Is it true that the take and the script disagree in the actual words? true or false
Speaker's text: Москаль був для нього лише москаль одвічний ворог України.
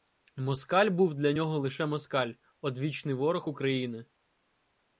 false